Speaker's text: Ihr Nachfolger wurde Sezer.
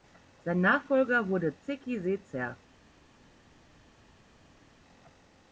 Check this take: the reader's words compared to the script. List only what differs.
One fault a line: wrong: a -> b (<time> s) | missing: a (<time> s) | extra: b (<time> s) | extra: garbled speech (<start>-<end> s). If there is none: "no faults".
wrong: Ihr -> Sein (0.4 s)
extra: Zeki (1.6 s)